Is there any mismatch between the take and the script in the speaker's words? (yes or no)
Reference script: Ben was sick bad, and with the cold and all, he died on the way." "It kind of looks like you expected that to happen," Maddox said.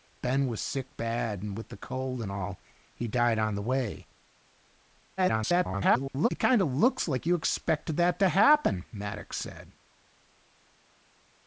yes